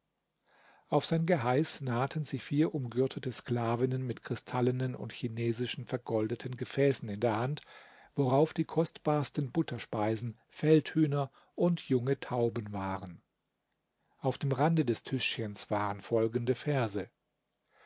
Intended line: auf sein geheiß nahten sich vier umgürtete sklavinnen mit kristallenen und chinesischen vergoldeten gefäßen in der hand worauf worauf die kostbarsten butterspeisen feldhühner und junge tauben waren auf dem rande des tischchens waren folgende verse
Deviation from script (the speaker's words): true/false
true